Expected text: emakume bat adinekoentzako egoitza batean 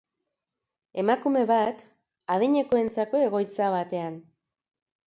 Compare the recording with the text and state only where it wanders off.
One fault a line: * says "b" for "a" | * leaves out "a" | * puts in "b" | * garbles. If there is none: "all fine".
all fine